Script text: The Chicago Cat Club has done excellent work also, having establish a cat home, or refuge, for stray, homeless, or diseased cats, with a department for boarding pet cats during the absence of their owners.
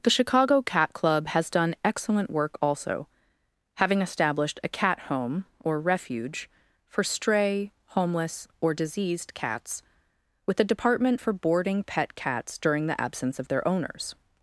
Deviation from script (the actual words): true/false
true